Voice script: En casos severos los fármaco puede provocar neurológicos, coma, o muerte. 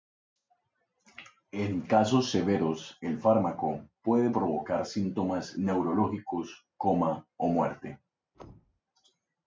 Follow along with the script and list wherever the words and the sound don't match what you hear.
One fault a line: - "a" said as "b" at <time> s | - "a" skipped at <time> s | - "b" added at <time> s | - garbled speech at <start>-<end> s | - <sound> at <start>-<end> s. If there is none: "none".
- "los" said as "el" at 3.0 s
- "síntomas" added at 4.9 s
- thud at 8.3-8.8 s